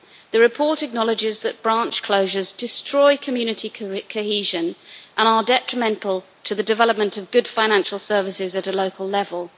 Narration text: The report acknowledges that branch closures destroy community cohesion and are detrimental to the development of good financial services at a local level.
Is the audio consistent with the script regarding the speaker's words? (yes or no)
yes